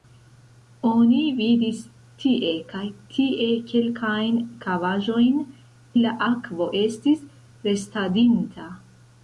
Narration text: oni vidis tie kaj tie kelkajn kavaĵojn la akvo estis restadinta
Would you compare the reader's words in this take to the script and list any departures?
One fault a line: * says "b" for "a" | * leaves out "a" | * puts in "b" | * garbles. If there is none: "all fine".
all fine